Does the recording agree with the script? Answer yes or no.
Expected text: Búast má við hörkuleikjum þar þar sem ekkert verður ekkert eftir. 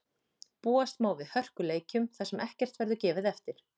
no